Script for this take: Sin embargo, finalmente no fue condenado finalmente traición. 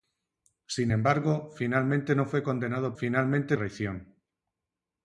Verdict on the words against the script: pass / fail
pass